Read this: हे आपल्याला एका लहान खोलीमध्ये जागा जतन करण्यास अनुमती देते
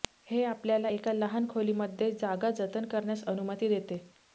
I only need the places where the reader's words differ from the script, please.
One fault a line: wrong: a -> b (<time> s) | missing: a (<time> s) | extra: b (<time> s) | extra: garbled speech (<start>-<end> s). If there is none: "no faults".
no faults